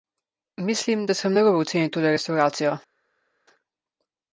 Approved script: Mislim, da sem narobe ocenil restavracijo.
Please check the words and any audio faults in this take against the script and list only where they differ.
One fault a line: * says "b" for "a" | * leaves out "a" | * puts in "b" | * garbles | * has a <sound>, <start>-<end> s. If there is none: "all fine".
* puts in "tole"